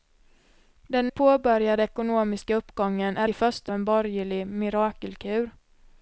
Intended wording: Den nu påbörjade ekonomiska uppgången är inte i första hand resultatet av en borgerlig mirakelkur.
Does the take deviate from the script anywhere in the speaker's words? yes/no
yes